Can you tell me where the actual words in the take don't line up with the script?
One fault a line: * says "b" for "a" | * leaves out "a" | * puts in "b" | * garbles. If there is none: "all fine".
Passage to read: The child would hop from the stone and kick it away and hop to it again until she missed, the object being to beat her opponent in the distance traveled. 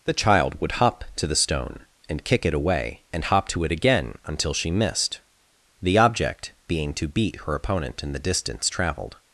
* says "to" for "from"